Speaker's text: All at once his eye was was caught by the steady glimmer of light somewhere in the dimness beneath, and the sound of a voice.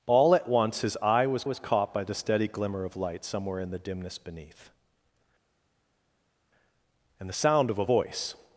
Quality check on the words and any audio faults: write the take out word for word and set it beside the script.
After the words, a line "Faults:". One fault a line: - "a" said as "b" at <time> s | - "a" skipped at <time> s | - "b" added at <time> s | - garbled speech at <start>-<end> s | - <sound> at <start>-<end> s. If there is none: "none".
All at once his eye was was caught by the steady glimmer of light somewhere in the dimness beneath, and the sound of a voice.
Faults:
none